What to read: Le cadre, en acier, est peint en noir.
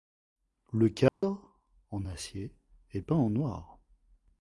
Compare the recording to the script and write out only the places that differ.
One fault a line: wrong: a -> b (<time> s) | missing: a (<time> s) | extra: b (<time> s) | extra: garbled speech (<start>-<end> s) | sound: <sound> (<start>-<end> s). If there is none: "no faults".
sound: dropout (1.1-1.2 s)